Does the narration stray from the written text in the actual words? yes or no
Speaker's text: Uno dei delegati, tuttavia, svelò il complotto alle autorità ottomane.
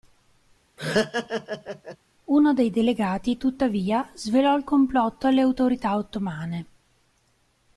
no